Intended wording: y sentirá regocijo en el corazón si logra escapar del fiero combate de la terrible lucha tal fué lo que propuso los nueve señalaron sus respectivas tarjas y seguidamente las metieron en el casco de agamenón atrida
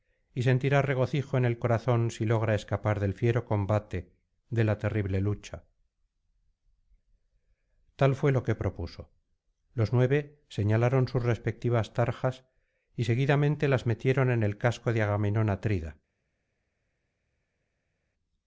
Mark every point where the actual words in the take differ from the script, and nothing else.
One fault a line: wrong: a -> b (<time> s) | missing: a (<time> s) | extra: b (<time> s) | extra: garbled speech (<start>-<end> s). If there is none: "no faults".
no faults